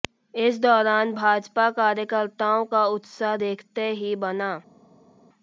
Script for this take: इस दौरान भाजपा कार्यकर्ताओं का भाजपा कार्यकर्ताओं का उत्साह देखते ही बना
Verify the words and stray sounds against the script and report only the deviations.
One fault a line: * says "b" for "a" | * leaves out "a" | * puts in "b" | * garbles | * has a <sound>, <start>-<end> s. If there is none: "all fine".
* leaves out "भाजपा कार्यकर्ताओं का"